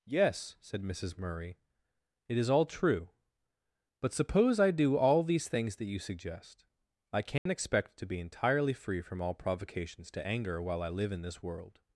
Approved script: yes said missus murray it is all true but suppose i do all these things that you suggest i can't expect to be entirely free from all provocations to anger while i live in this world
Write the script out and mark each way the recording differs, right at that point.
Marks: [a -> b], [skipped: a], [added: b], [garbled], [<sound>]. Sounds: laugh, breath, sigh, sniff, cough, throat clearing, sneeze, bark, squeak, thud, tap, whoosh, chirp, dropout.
yes said missus murray it is all true but suppose i do all these things that you suggest i can't [dropout] expect to be entirely free from all provocations to anger while i live in this world